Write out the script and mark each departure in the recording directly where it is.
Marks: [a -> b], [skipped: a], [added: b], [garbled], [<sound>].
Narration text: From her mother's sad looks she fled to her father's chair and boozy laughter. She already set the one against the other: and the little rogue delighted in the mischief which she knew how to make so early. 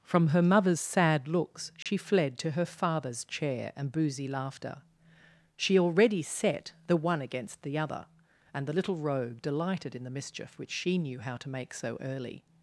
From her mother's sad looks she [dropout] fled to her father's chair and boozy laughter. She already set the one against the other: and the little rogue delighted in the mischief which she knew how to make so early.